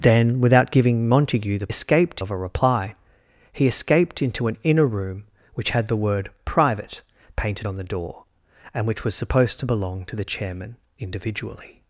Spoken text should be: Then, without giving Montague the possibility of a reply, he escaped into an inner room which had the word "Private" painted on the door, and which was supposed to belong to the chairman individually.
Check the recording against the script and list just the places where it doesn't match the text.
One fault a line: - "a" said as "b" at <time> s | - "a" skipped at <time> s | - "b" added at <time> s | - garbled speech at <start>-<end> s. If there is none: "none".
- "possibility" said as "escaped" at 1.7 s